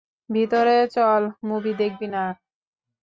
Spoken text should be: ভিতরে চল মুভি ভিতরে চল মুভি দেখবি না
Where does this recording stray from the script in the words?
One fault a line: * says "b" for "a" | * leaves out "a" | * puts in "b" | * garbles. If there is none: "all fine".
* leaves out "ভিতরে চল মুভি"